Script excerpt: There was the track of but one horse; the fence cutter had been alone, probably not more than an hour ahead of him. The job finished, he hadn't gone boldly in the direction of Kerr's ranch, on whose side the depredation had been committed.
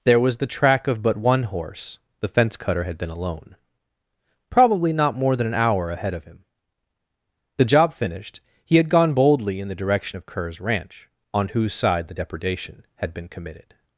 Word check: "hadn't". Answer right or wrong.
wrong